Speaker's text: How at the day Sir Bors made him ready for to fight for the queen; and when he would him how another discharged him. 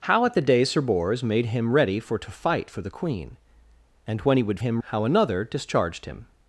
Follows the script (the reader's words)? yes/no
yes